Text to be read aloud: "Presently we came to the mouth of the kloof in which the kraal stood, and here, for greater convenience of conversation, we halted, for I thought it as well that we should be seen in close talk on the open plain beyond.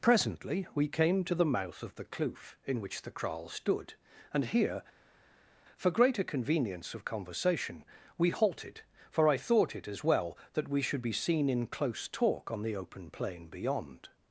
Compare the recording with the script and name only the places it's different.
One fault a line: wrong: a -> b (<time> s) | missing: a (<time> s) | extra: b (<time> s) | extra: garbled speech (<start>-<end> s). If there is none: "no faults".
no faults